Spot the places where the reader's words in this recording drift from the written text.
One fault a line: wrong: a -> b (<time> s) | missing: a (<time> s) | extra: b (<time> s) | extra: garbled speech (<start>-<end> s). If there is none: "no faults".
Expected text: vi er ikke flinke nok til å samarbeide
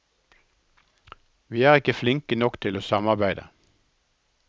no faults